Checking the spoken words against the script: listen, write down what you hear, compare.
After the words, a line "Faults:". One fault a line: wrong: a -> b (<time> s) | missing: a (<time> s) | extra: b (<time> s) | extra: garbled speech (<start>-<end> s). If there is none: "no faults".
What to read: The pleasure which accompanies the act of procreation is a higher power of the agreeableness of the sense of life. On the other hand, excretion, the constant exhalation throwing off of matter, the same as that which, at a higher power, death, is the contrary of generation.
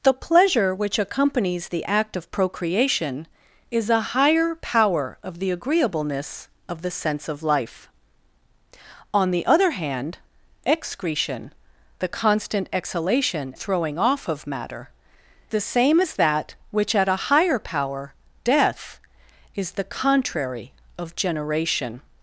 The pleasure which accompanies the act of procreation is a higher power of the agreeableness of the sense of life. On the other hand, excretion, the constant exhalation throwing off of matter, the same as that which, at a higher power, death, is the contrary of generation.
Faults:
no faults